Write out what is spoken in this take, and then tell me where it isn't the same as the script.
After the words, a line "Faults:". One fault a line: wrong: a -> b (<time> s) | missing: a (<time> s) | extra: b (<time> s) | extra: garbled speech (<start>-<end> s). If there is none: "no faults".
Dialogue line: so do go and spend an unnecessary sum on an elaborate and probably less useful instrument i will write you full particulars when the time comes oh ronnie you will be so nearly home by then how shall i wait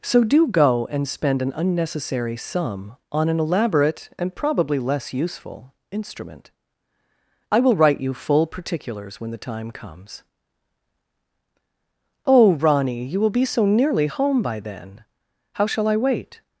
so do go and spend an unnecessary sum on an elaborate and probably less useful instrument i will write you full particulars when the time comes oh ronnie you will be so nearly home by then how shall i wait
Faults:
no faults